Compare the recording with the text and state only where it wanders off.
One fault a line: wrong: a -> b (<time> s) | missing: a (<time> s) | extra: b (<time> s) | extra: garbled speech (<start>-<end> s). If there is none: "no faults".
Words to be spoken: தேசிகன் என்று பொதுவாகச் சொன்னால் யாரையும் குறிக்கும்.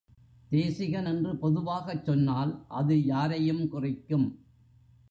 extra: அது (2.7 s)